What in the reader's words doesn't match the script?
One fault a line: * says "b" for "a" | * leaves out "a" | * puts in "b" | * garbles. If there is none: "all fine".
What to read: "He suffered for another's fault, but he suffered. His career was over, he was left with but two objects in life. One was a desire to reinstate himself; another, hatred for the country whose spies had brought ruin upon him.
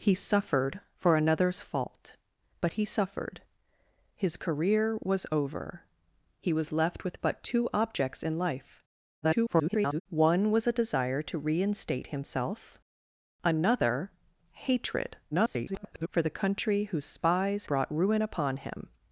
* garbles
* garbles
* leaves out "had"